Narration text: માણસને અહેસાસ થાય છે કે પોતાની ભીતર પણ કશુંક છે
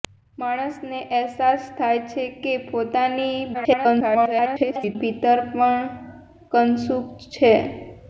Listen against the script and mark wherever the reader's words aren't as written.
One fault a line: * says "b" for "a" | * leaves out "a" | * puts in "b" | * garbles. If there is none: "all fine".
* garbles